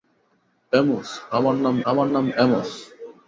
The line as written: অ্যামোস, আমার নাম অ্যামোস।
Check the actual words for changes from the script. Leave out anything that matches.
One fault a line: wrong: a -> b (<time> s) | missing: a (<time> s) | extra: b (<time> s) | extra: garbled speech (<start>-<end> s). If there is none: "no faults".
extra: আমার নাম (1.9 s)